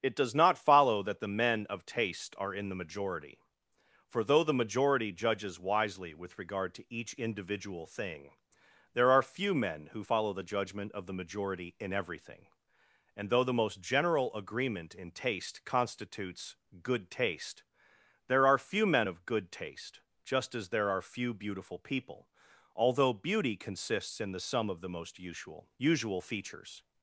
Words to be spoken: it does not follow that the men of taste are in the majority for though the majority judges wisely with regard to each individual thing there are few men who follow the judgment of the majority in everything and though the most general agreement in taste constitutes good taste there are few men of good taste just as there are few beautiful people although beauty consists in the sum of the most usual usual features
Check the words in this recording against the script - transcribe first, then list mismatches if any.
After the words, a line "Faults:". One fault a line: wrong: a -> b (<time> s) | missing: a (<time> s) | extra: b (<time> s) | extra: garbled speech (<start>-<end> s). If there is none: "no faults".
it does not follow that the men of taste are in the majority for though the majority judges wisely with regard to each individual thing there are few men who follow the judgment of the majority in everything and though the most general agreement in taste constitutes good taste there are few men of good taste just as there are few beautiful people although beauty consists in the sum of the most usual usual features
Faults:
no faults